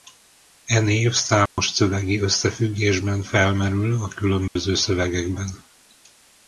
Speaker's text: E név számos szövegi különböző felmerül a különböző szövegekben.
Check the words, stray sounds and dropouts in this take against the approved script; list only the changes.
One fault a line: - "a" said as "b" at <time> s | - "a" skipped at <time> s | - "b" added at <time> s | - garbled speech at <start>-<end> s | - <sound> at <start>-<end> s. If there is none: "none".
- dropout at 1.5-1.6 s
- "különböző" said as "összefüggésben" at 2.2 s
- dropout at 4.5-4.6 s